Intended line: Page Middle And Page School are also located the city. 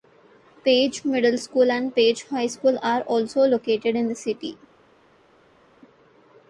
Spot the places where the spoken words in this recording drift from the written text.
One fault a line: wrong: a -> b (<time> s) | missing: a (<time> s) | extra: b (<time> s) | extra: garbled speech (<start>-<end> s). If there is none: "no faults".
extra: School (1.4 s)
extra: High (2.2 s)
extra: in (4.0 s)